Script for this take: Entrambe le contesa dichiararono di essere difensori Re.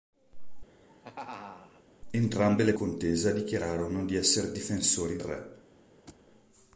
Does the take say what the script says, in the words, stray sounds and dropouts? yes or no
no